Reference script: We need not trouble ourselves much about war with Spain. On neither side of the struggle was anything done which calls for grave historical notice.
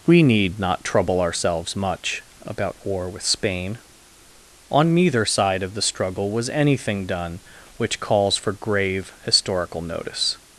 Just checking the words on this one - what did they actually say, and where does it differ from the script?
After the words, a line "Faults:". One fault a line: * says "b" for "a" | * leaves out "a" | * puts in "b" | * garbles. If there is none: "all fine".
We need not trouble ourselves much about war with Spain. On neither side of the struggle was anything done which calls for grave historical notice.
Faults:
all fine